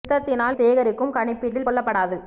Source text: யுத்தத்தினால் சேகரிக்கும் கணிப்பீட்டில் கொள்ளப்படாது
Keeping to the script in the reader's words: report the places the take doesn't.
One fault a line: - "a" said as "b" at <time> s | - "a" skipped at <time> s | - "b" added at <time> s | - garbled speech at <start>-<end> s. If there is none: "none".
none